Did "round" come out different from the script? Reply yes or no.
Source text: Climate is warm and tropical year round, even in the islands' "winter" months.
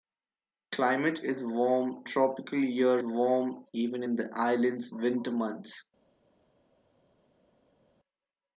yes